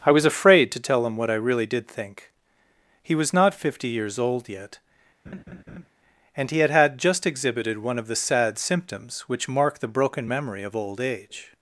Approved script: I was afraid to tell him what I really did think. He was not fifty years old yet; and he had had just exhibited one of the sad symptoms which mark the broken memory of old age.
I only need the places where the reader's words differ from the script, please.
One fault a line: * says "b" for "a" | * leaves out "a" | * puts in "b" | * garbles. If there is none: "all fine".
all fine